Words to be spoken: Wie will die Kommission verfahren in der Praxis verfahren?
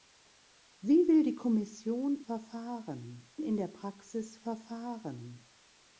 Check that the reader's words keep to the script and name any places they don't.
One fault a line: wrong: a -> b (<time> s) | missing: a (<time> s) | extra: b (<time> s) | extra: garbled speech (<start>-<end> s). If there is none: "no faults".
no faults